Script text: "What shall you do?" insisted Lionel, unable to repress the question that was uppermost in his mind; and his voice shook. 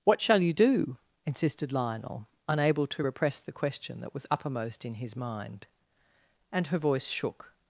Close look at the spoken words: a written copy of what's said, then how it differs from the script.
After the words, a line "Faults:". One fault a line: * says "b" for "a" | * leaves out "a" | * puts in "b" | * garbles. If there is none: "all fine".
"What shall you do?" insisted Lionel, unable to repress the question that was uppermost in his mind; and her voice shook.
Faults:
* says "her" for "his"